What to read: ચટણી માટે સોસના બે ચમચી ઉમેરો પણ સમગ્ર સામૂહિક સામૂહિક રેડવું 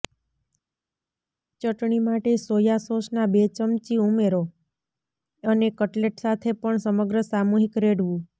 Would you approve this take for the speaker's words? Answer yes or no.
no